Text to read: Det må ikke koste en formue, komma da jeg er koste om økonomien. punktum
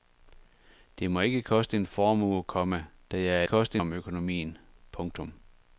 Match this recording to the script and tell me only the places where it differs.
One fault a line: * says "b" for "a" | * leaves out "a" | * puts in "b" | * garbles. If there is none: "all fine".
all fine